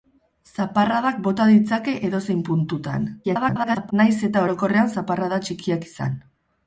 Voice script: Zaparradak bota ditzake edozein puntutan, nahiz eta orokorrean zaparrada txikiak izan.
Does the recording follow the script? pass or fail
fail